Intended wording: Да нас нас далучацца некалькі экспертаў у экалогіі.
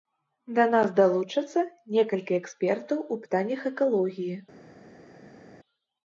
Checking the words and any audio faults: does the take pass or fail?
fail